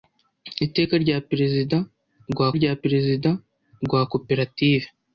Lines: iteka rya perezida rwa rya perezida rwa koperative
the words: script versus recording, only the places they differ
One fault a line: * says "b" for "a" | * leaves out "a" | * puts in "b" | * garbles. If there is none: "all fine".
all fine